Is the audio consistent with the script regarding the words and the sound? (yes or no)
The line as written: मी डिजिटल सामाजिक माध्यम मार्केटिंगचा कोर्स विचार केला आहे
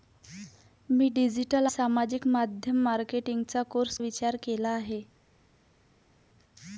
yes